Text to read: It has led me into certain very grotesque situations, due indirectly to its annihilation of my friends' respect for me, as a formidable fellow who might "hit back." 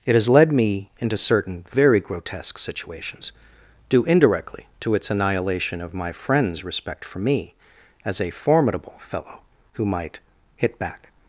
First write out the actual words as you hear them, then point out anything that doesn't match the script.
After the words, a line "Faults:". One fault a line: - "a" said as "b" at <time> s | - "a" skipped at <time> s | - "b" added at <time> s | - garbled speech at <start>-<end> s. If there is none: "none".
It has led me into certain very grotesque situations, due indirectly to its annihilation of my friends' respect for me, as a formidable fellow who might "hit back."
Faults:
none